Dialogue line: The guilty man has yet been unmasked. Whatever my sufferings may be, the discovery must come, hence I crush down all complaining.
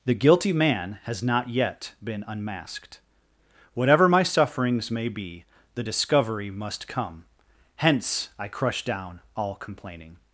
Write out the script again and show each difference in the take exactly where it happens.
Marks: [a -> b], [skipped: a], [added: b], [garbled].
The guilty man has [added: not] yet been unmasked. Whatever my sufferings may be, the discovery must come, hence I crush down all complaining.